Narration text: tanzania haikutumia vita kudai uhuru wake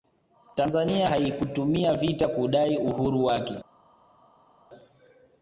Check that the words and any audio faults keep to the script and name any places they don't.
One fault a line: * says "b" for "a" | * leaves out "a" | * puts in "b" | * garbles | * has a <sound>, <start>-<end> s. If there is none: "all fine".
all fine